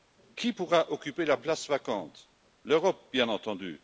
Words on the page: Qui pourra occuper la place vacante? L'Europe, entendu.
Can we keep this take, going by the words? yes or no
no